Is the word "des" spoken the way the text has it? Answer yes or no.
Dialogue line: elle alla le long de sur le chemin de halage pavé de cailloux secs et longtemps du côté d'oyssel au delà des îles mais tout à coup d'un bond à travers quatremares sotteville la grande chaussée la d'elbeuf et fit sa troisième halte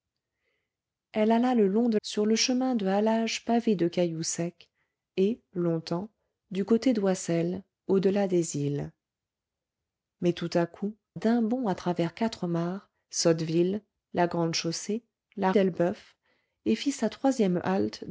yes